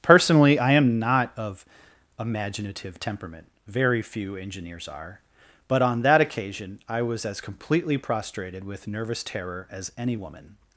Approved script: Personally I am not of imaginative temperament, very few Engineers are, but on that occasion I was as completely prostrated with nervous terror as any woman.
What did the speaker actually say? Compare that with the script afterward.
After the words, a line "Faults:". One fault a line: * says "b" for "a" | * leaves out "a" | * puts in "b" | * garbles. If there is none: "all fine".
Personally I am not of imaginative temperament, very few Engineers are, but on that occasion I was as completely prostrated with nervous terror as any woman.
Faults:
all fine